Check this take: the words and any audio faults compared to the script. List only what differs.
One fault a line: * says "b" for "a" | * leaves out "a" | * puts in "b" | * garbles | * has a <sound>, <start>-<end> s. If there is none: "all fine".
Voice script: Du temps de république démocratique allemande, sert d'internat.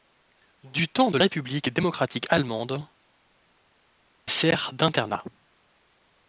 all fine